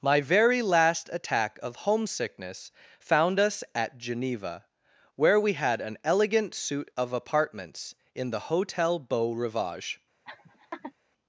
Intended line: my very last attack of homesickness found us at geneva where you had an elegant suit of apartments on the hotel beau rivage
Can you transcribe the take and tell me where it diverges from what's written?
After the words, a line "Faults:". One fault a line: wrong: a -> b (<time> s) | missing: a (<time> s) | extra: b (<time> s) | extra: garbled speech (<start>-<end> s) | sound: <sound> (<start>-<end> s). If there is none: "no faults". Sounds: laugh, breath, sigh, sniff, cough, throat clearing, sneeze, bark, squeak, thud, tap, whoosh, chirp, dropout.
my very last attack of homesickness found us at geneva where we had an elegant suit of apartments in the hotel beau rivage
Faults:
wrong: you -> we (5.4 s)
wrong: on -> in (8.1 s)
sound: laugh (10.3-10.9 s)